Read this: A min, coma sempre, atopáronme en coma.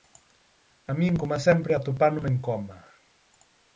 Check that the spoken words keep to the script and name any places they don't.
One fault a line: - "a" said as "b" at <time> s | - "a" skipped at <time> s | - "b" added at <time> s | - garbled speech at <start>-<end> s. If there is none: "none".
none